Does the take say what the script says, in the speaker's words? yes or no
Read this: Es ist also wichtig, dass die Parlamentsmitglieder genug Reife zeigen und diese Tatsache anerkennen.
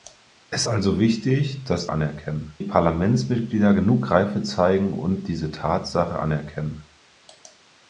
no